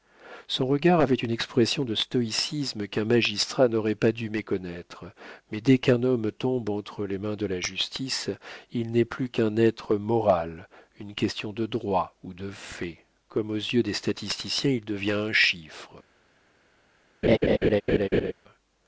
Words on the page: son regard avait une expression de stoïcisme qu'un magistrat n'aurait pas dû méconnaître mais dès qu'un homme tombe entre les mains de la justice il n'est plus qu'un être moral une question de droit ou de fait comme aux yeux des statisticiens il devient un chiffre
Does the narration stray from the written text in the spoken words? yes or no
no